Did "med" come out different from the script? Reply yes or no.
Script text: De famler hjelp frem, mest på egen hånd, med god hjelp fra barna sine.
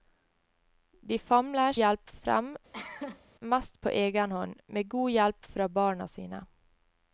no